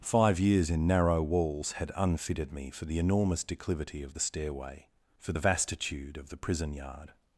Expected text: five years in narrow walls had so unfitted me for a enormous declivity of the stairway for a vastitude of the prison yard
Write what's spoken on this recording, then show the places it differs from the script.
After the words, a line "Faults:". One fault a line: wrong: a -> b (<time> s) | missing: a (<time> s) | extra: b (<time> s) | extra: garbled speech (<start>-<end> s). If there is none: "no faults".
five years in narrow walls had unfitted me for the enormous declivity of the stairway for the vastitude of the prison yard
Faults:
missing: so (1.9 s)
wrong: a -> the (2.9 s)
wrong: a -> the (5.3 s)